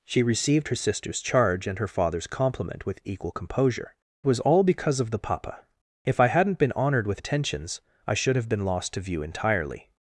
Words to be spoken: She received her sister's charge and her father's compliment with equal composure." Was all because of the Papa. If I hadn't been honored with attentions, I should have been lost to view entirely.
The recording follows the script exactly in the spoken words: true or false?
true